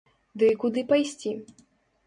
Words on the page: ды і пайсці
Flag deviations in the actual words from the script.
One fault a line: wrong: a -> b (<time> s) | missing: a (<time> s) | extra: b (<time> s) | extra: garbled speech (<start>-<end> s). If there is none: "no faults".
extra: куды (0.6 s)